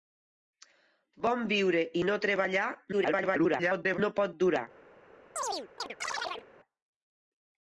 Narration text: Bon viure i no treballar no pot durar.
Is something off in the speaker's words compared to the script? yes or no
yes